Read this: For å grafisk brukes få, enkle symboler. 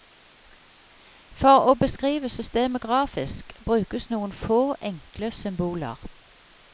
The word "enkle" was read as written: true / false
true